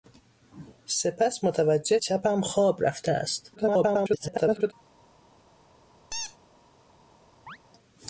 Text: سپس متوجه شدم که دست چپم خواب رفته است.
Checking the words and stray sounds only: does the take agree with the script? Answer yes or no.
no